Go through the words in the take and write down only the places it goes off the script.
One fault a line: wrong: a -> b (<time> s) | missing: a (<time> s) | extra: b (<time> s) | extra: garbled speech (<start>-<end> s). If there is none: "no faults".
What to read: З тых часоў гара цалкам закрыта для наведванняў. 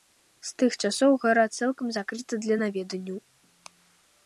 no faults